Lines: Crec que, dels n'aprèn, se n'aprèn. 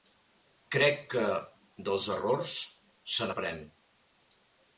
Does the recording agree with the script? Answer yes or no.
no